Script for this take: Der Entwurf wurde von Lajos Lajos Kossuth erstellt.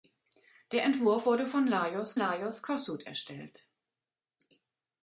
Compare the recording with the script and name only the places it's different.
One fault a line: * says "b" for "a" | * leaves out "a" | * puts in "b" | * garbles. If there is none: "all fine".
all fine